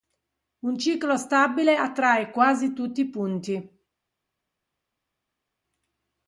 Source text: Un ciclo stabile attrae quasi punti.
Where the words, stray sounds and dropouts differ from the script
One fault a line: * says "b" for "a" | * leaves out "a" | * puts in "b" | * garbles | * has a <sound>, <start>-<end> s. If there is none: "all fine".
* puts in "tutti i"